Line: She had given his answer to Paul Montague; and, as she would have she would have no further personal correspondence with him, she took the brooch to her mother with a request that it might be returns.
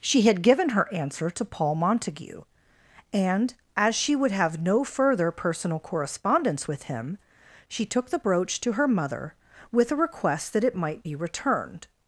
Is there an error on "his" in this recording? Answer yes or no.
yes